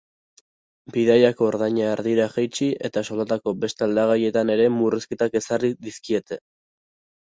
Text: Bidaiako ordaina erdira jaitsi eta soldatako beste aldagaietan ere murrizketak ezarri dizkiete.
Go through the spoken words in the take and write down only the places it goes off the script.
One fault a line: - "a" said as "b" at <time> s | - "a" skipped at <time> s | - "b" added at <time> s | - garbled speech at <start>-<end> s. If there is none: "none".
none